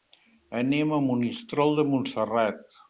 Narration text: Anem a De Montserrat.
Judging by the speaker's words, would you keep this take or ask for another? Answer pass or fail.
fail